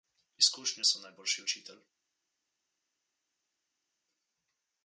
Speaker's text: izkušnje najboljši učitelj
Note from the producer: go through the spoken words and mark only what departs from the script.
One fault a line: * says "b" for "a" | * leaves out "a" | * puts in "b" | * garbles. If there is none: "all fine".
* puts in "so"